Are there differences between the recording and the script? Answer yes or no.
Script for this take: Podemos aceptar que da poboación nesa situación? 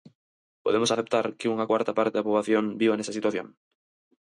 yes